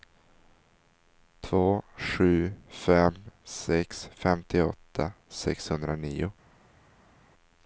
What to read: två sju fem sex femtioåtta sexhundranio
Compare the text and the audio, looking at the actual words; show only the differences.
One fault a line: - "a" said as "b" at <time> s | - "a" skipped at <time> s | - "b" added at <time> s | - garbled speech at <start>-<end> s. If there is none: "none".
none